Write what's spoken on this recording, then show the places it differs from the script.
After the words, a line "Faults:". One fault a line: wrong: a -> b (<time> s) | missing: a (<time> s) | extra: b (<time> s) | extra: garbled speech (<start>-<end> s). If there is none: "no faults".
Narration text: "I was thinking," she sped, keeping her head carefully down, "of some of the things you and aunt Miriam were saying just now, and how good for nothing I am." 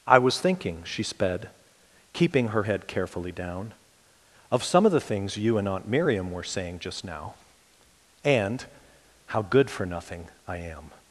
"I was thinking," she sped, keeping her head carefully down, "of some of the things you and aunt Miriam were saying just now, and how good for nothing I am."
Faults:
no faults